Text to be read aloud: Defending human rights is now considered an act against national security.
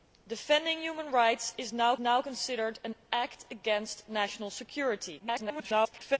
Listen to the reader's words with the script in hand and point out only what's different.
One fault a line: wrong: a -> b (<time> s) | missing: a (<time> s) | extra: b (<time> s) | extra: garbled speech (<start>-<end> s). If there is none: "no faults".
extra: now (2.0 s)
extra: garbled speech (5.2-6.2 s)